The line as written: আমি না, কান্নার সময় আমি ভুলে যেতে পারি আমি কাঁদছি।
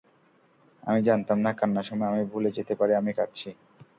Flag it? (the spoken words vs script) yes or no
yes